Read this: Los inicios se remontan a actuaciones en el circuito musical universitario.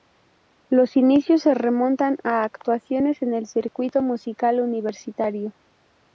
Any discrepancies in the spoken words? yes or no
no